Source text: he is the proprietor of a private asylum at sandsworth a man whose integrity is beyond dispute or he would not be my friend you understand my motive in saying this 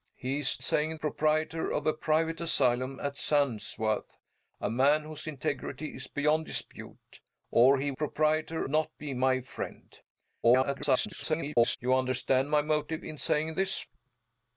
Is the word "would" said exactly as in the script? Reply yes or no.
no